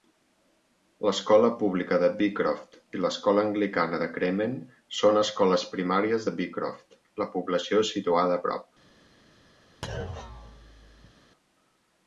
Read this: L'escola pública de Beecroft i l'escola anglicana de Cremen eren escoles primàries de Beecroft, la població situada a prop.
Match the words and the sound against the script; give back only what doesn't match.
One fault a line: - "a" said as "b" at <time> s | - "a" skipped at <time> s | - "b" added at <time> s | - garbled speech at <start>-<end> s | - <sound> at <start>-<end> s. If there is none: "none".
- "eren" said as "són" at 5.0 s
- thud at 9.8-11.1 s